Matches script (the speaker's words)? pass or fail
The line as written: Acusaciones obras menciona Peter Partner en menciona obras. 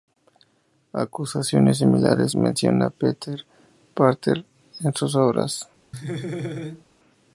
fail